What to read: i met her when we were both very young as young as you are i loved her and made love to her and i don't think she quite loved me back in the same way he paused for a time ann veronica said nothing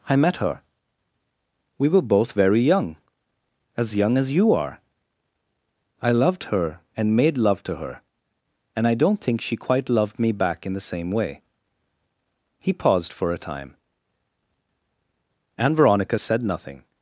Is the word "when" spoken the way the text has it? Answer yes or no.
no